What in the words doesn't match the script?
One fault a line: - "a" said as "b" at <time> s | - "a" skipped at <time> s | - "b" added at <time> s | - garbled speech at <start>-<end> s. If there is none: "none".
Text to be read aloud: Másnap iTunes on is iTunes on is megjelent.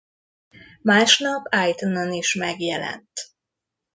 - "iTunes on is" skipped at 2.3 s